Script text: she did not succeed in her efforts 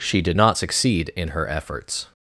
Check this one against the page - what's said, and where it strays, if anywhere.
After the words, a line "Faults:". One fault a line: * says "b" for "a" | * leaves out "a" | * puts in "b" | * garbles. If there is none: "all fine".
she did not succeed in her efforts
Faults:
all fine